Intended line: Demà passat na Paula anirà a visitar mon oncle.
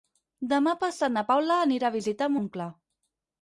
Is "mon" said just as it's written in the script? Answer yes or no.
no